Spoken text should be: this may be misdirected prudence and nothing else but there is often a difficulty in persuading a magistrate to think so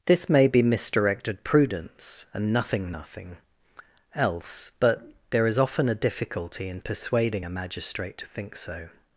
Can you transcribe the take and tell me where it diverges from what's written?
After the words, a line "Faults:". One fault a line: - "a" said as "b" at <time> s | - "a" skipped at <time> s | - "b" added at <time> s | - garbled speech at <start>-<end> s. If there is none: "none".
this may be misdirected prudence and nothing nothing else but there is often a difficulty in persuading a magistrate to think so
Faults:
- "nothing" added at 2.9 s